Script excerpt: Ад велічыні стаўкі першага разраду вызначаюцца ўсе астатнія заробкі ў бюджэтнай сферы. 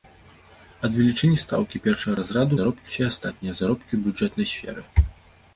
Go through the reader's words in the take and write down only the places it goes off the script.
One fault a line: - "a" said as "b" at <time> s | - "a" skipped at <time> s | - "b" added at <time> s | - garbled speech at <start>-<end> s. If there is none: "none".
- "вызначаюцца" said as "заробкі" at 2.6 s